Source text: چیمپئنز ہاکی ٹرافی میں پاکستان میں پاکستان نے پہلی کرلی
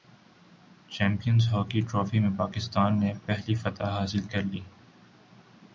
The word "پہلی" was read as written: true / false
false